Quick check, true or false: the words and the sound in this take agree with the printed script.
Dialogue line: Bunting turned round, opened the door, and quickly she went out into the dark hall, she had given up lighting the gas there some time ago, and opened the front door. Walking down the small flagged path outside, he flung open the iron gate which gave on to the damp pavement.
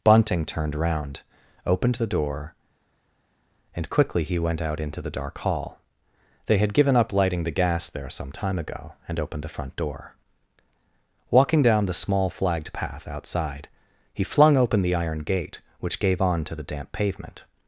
false